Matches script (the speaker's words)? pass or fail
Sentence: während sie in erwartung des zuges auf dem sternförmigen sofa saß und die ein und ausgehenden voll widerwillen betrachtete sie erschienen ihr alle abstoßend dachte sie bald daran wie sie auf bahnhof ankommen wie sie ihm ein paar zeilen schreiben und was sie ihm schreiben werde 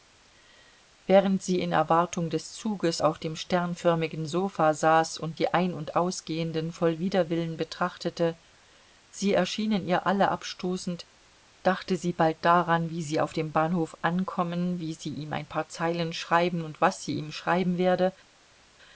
fail